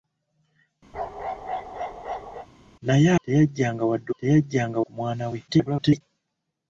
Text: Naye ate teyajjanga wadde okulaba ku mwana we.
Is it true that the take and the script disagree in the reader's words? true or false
true